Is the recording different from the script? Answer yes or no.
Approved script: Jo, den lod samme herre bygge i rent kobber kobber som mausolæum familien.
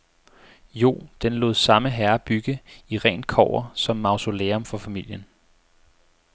yes